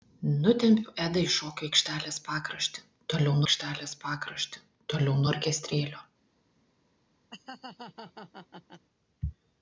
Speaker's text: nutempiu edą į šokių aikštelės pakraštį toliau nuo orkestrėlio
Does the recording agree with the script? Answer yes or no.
no